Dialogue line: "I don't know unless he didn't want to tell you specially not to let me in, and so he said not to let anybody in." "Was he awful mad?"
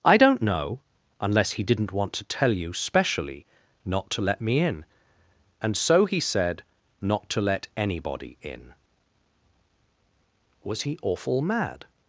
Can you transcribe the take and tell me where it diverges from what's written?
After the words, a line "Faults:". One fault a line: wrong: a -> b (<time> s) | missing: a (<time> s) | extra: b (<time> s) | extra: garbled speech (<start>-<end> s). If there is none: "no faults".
"I don't know unless he didn't want to tell you specially not to let me in, and so he said not to let anybody in." "Was he awful mad?"
Faults:
no faults